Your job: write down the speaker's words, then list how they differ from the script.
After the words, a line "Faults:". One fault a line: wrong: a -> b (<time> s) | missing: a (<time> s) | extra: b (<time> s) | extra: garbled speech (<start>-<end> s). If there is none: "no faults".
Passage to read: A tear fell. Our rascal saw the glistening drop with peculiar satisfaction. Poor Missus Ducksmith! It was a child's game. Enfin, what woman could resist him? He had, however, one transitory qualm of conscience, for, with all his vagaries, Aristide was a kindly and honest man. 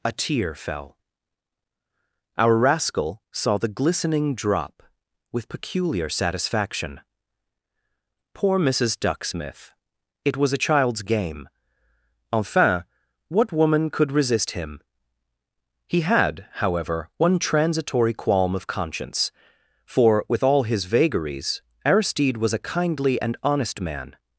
A tear fell. Our rascal saw the glistening drop with peculiar satisfaction. Poor Missus Ducksmith! It was a child's game. Enfin, what woman could resist him? He had, however, one transitory qualm of conscience, for, with all his vagaries, Aristide was a kindly and honest man.
Faults:
no faults